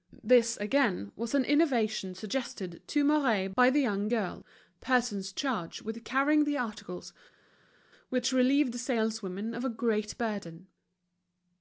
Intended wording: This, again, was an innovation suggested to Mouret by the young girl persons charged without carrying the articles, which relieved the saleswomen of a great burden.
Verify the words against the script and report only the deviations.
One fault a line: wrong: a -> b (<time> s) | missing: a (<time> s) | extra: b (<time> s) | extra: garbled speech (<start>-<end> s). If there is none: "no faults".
wrong: without -> with (5.8 s)